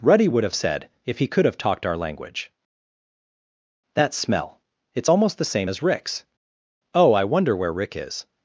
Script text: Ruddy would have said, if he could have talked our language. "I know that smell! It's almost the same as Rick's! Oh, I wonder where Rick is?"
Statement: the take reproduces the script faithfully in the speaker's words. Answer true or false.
false